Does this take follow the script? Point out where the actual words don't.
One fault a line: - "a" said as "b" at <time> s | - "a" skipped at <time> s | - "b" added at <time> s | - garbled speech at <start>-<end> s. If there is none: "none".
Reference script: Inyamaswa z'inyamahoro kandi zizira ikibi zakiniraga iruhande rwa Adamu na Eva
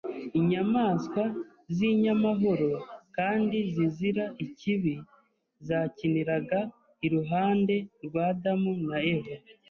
none